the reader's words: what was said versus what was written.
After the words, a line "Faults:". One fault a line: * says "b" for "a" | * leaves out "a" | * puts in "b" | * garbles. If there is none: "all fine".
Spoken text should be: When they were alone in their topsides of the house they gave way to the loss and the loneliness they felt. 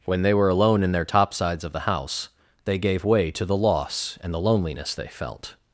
When they were alone in their topsides of the house they gave way to the loss and the loneliness they felt.
Faults:
all fine